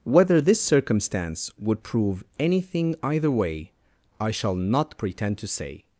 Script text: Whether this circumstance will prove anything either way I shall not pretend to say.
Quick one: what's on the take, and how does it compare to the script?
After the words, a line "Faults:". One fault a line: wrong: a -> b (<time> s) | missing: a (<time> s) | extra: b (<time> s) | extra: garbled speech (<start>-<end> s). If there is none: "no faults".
Whether this circumstance would prove anything either way I shall not pretend to say.
Faults:
wrong: will -> would (1.6 s)